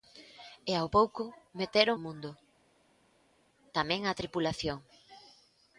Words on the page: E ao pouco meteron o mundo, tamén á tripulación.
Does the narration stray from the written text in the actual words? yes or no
no